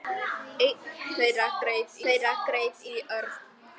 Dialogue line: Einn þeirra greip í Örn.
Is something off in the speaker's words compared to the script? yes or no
yes